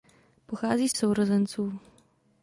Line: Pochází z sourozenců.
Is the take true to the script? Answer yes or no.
yes